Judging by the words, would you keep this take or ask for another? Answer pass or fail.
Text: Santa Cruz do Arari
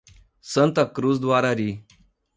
pass